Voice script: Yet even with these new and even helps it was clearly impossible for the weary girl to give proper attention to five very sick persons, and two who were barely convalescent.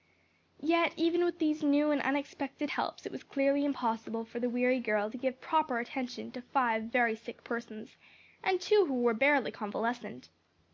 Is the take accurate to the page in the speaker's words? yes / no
no